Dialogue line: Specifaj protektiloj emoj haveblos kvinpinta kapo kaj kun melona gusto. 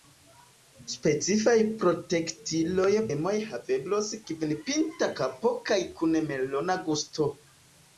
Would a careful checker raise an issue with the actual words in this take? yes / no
no